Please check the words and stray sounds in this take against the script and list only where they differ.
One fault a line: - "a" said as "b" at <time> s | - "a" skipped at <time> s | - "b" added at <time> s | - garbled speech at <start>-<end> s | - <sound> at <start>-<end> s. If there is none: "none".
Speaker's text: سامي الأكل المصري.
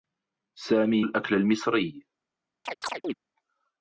- chirp at 2.7-3.1 s